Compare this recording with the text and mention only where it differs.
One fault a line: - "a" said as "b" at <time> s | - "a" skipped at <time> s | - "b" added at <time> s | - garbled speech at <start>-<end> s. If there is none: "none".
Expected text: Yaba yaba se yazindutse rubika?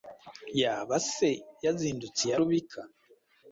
- "yaba" skipped at 0.9 s
- "iya" added at 2.2 s